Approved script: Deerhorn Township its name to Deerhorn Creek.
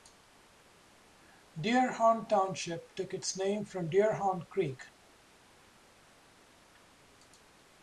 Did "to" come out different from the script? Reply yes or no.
yes